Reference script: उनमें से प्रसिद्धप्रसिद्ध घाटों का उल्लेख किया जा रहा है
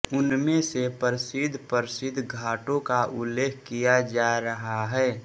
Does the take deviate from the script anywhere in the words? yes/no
no